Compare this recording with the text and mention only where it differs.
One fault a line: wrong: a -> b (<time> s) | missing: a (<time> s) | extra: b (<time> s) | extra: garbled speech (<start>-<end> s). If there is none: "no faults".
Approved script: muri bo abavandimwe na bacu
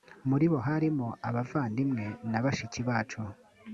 extra: harimo (0.7 s)
extra: bashiki (2.4 s)